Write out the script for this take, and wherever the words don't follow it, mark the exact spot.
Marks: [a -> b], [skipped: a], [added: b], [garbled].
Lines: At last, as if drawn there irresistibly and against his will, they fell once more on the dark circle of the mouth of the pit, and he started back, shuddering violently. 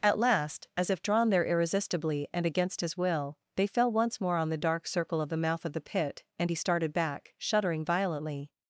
At last, as if drawn there irresistibly and against his will, they fell once more on the dark circle of the mouth of the pit, and he started back, shuddering violently.